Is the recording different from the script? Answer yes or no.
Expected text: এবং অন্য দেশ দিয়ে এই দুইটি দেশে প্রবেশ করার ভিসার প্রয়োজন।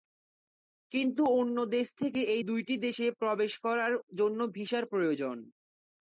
yes